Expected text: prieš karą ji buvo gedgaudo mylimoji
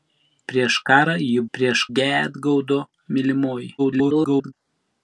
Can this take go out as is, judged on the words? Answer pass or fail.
fail